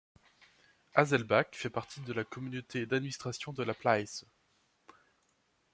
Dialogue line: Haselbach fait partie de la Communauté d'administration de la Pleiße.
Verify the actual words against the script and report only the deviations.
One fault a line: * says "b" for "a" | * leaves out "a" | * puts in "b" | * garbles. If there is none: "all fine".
all fine